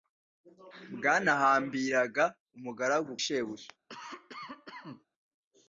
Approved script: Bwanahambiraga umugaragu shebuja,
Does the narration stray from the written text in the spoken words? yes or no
no